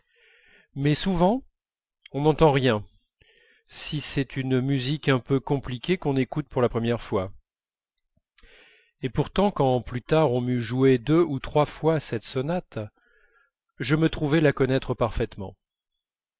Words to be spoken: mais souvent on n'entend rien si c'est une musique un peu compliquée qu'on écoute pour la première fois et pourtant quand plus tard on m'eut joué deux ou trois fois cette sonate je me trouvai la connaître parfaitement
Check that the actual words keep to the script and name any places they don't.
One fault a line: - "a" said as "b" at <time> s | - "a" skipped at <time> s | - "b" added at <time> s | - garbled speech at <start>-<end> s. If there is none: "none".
none